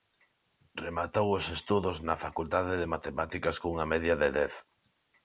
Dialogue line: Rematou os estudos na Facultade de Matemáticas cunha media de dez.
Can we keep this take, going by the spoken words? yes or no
yes